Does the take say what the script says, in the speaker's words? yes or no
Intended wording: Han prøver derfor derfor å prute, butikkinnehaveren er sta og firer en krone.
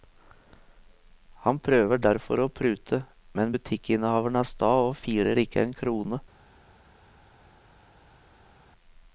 no